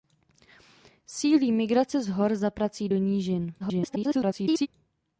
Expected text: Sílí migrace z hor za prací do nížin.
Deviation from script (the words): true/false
true